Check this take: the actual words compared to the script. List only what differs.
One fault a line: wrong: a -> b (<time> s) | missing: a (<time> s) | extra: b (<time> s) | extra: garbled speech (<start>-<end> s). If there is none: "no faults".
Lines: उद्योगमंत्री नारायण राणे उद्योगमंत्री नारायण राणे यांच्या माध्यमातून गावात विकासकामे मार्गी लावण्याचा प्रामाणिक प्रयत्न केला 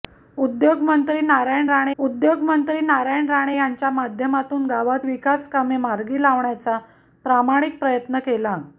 no faults